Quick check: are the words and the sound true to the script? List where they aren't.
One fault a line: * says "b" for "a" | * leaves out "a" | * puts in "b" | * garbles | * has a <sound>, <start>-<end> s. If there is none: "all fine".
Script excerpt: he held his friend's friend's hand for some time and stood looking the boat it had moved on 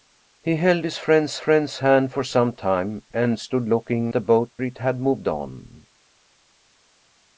all fine